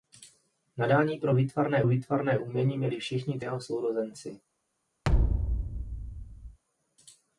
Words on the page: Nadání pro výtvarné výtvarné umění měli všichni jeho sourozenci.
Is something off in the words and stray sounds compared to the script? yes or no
yes